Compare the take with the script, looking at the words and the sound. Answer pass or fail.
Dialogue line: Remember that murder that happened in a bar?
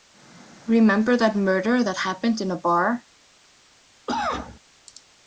fail